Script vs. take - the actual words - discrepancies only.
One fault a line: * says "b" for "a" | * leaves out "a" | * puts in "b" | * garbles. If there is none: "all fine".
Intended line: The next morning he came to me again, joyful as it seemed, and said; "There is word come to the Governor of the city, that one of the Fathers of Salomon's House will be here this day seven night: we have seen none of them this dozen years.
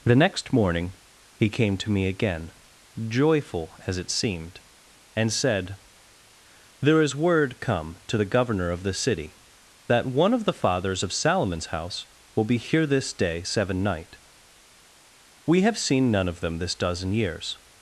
all fine